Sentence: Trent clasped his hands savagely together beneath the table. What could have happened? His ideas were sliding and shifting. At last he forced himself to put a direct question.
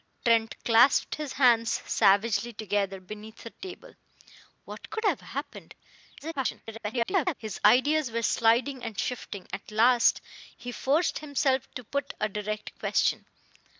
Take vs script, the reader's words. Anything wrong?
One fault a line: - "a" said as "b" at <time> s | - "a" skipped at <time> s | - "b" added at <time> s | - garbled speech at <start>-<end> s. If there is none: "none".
- garbled speech at 6.2-7.3 s